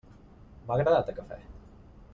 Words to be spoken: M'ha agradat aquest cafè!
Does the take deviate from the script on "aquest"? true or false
true